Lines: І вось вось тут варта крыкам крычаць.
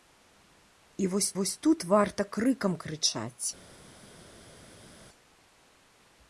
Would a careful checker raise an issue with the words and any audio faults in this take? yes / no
no